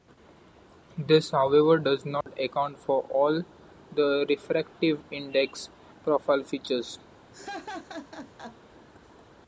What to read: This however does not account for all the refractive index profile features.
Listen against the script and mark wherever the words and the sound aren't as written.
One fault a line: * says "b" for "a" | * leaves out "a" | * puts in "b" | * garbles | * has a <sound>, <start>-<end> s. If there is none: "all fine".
* has a dropout, 2.2-2.3 s
* has a laugh, 7.3-8.6 s